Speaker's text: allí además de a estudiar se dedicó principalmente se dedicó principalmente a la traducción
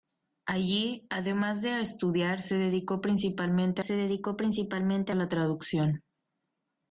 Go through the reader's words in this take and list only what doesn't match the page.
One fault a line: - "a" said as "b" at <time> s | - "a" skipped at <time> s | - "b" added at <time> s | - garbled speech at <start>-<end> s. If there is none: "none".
none